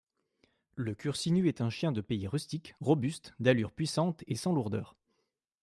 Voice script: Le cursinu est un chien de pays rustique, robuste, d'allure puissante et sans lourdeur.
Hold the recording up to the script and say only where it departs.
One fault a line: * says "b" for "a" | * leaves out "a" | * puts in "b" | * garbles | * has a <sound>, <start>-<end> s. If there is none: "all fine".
all fine